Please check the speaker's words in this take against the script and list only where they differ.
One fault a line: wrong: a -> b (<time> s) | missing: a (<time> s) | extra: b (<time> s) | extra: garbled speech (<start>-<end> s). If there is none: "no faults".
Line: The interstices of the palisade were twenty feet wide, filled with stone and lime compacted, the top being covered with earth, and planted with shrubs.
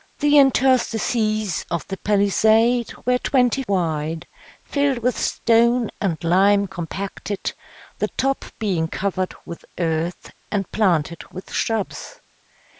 missing: feet (3.6 s)